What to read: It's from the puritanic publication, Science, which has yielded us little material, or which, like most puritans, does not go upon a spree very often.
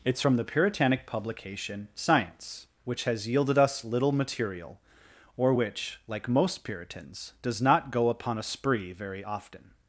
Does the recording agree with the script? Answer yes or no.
yes